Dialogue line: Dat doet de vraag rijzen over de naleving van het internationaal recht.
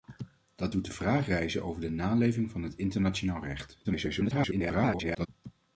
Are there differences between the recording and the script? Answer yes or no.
yes